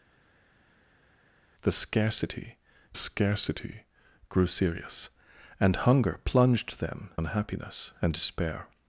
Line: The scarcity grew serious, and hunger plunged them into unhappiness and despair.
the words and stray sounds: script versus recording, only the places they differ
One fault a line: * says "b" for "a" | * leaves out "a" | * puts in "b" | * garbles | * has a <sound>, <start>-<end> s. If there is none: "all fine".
* puts in "scarcity"
* leaves out "into"